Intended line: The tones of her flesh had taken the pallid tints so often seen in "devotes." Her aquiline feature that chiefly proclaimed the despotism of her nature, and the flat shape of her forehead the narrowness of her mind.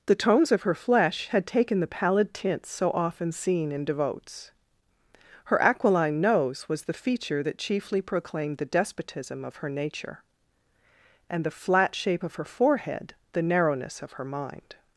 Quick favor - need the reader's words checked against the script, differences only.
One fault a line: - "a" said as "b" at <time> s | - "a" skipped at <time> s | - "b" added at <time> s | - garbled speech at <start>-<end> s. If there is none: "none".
- "nose was the" added at 6.2 s